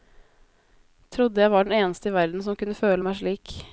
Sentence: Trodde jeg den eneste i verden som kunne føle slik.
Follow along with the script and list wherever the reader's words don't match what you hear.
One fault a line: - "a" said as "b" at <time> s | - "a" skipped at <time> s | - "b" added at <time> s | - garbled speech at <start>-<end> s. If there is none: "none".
- "var" added at 1.5 s
- "meg" added at 3.0 s